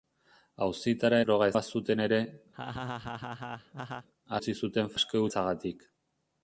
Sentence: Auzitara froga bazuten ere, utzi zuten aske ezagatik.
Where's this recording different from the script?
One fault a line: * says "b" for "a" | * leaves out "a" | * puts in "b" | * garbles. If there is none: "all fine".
all fine